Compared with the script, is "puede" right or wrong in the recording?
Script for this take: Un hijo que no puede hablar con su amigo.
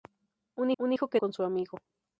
wrong